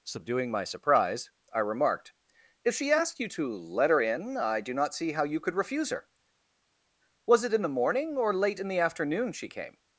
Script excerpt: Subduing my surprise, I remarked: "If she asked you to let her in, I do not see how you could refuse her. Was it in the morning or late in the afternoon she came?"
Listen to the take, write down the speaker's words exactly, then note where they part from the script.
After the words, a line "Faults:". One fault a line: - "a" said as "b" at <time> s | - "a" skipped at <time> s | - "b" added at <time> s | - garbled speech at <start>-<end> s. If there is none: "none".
Subduing my surprise, I remarked: "If she asked you to let her in, I do not see how you could refuse her. Was it in the morning or late in the afternoon she came?"
Faults:
none